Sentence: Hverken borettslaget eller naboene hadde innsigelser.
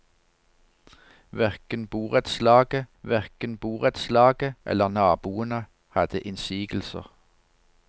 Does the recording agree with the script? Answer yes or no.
no